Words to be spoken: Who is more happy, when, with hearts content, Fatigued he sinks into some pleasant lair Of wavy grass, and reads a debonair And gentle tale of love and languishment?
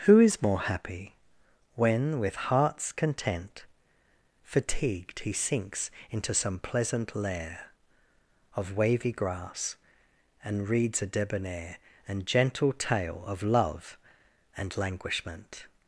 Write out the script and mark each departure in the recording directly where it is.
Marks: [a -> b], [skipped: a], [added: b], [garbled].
Who is more happy, when, with hearts content, Fatigued he sinks into some pleasant lair Of wavy grass, and reads a debonair And gentle tale of love and languishment?